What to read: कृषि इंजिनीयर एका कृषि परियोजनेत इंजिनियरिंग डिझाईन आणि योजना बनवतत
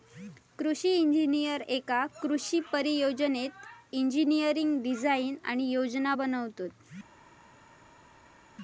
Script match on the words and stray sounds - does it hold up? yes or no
yes